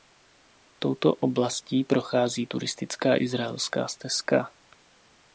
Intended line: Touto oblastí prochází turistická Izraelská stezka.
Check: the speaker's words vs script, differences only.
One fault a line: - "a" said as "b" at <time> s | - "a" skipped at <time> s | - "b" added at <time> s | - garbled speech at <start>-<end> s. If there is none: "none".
none